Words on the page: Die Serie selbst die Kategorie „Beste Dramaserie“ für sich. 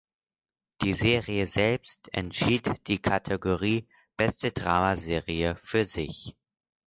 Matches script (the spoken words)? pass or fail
fail